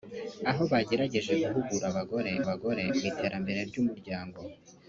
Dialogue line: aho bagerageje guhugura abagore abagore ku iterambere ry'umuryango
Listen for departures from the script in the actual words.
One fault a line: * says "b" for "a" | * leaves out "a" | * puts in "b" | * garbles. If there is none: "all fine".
all fine